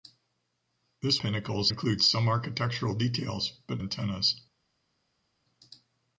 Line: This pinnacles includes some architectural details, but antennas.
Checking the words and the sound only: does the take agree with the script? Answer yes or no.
yes